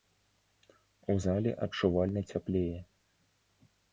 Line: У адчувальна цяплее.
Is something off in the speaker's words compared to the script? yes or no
yes